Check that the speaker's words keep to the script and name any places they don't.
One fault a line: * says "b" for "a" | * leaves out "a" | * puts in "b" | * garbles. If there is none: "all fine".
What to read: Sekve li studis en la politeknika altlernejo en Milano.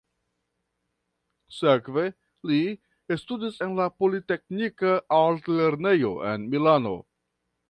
all fine